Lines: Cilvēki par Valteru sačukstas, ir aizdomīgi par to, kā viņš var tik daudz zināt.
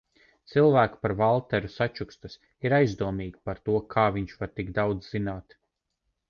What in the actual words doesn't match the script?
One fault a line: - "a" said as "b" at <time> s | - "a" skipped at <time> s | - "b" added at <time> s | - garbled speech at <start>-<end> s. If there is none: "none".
none